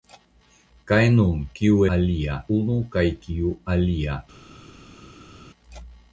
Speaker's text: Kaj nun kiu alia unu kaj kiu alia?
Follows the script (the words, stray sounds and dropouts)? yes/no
yes